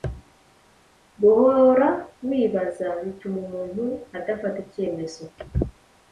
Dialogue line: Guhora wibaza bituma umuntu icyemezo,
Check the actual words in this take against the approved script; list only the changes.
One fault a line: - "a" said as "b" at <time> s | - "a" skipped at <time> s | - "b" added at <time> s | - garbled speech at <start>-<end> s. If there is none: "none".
- "adafata" added at 4.2 s